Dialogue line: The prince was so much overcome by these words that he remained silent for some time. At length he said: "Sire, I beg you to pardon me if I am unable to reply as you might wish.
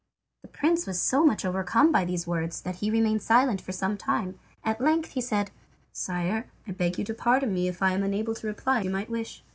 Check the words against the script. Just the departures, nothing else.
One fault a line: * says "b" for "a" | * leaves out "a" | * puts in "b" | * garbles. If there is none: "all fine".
* leaves out "as"